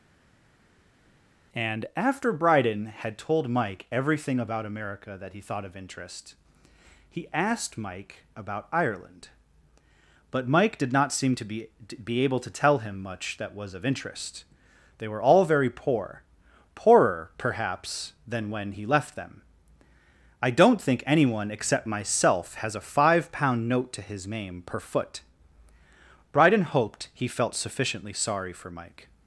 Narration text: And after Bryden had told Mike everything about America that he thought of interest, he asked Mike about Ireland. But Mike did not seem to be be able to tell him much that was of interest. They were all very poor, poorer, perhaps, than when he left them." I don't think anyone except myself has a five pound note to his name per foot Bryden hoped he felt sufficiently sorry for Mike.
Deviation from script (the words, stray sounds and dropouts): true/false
false